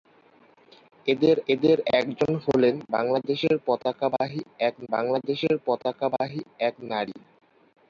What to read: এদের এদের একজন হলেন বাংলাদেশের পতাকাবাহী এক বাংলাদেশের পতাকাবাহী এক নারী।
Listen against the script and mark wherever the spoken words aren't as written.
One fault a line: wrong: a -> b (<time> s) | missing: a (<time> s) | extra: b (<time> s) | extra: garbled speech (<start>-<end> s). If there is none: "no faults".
no faults